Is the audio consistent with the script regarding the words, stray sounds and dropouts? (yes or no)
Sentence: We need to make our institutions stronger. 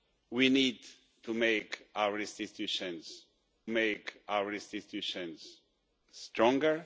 no